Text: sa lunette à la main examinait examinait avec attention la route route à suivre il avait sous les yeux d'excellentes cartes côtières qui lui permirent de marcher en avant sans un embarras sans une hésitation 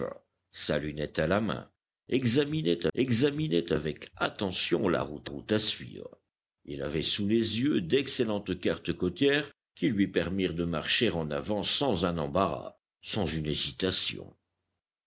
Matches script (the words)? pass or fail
pass